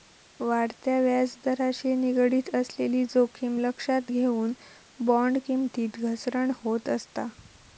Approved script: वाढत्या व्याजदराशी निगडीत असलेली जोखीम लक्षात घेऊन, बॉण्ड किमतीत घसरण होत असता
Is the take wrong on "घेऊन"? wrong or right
right